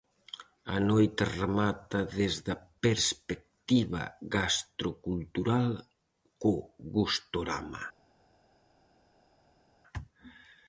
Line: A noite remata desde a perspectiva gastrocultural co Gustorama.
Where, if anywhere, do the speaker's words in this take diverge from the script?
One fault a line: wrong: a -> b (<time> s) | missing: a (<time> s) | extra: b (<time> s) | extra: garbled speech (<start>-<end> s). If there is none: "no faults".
no faults